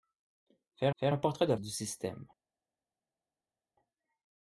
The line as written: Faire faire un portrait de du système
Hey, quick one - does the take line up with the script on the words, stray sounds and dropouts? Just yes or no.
yes